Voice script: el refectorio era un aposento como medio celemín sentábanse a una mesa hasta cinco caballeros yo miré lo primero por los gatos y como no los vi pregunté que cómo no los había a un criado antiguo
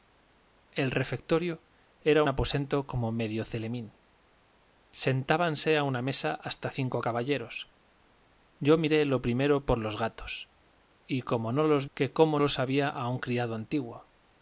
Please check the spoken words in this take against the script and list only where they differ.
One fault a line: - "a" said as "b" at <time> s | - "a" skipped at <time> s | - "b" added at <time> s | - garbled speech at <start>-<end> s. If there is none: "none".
- "un" skipped at 2.2 s
- "vi pregunté" skipped at 11.9 s
- "no" skipped at 12.4 s